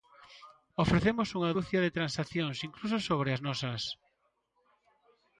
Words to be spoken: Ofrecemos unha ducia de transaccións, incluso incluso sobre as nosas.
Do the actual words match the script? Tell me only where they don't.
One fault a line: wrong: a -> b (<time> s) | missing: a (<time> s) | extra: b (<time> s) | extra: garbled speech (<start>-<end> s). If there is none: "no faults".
missing: incluso (3.0 s)